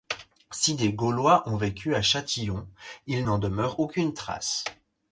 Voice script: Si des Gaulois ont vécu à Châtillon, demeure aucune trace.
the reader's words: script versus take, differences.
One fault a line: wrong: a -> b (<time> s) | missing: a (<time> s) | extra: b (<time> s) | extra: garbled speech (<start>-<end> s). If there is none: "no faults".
extra: il n'en (3.0 s)